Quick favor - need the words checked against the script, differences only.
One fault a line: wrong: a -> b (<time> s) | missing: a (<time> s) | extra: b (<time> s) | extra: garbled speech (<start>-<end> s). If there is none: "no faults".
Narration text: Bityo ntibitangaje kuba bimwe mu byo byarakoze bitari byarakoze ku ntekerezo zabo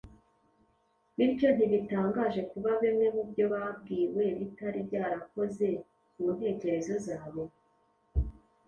wrong: byarakoze -> babwiwe (3.5 s)